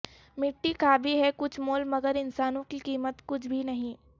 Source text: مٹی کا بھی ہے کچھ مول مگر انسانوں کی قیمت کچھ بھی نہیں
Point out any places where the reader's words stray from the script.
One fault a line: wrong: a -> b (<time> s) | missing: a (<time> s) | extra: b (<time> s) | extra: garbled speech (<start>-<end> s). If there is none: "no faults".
no faults